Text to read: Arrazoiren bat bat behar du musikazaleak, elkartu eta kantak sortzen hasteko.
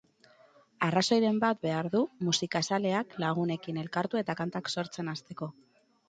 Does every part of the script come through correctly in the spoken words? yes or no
no